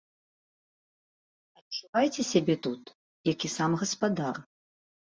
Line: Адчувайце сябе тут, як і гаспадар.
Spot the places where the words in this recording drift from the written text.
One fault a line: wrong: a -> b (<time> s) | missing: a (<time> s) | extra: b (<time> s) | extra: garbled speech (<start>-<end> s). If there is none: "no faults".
extra: сам (3.6 s)